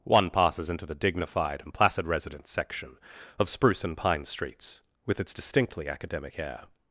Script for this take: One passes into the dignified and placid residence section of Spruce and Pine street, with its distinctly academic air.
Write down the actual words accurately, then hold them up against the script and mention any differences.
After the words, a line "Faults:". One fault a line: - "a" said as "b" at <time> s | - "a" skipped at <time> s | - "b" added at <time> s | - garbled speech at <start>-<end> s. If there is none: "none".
One passes into the dignified and placid residence section of Spruce and Pine streets, with its distinctly academic air.
Faults:
- "street" said as "streets" at 4.2 s